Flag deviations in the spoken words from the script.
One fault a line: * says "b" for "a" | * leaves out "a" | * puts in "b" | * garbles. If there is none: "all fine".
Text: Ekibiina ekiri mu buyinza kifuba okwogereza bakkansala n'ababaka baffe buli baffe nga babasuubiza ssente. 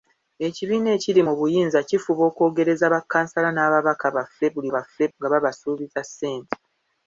all fine